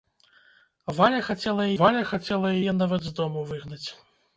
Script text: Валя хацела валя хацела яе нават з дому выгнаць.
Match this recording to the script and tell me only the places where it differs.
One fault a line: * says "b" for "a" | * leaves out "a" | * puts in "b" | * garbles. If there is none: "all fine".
all fine